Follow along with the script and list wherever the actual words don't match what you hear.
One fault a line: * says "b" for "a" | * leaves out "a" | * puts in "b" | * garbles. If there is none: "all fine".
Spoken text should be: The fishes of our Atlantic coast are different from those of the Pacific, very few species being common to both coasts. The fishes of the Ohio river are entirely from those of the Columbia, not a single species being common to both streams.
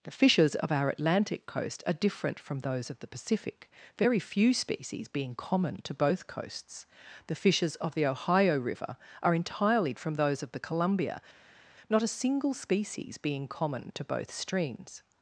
all fine